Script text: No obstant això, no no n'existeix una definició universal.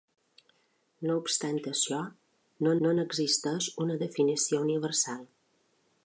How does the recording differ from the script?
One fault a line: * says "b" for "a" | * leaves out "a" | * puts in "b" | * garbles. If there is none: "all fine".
all fine